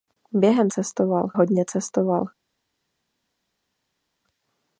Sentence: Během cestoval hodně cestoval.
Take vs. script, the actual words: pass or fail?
pass